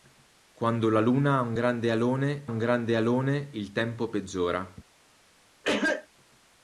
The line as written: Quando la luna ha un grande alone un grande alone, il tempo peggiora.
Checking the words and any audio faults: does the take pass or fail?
fail